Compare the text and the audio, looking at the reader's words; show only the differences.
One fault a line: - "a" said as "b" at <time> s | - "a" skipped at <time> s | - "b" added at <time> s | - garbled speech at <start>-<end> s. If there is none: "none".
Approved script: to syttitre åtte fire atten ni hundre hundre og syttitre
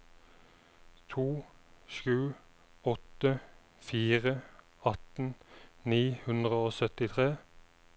- "syttitre" said as "sju" at 1.9 s
- "hundre" skipped at 6.6 s